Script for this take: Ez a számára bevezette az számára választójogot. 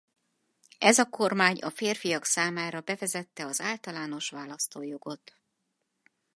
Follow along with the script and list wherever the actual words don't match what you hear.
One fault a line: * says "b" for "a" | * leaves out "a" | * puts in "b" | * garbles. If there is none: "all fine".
* puts in "kormány a férfiak"
* says "általános" for "számára"